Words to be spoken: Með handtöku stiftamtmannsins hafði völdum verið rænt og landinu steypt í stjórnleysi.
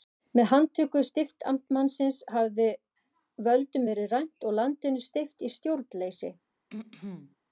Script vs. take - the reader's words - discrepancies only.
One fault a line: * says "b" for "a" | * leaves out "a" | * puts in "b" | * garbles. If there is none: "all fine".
all fine